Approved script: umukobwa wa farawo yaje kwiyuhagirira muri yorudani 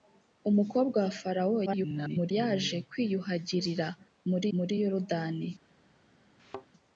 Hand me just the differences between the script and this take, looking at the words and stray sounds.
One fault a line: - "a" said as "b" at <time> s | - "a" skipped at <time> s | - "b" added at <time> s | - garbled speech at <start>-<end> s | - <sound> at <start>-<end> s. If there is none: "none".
- garbled speech at 1.7-2.3 s
- "muri" added at 4.6 s
- thud at 6.4-6.7 s